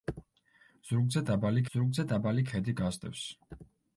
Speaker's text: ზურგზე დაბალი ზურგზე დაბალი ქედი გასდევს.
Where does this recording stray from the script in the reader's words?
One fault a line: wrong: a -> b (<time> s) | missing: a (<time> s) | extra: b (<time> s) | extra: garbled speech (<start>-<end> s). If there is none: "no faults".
no faults